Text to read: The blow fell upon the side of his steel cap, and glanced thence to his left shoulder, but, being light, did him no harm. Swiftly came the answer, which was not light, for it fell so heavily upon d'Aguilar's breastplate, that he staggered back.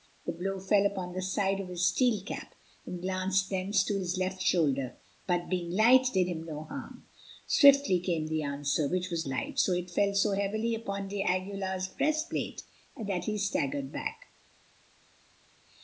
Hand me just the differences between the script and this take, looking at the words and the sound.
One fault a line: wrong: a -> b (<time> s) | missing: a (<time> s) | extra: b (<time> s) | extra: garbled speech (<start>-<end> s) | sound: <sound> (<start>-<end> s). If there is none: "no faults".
missing: not (9.3 s)